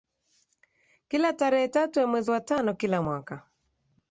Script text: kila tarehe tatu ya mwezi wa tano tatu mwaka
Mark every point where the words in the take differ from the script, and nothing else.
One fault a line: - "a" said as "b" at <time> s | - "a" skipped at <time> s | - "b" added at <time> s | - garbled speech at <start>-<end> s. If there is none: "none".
- "tatu" said as "kila" at 2.7 s